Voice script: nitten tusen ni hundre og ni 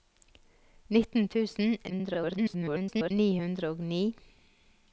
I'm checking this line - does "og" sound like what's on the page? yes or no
yes